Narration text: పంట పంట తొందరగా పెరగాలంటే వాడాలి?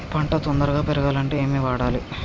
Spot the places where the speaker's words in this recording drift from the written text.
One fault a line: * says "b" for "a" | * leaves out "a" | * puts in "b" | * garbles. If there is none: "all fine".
* leaves out "పంట"
* puts in "ఏమి"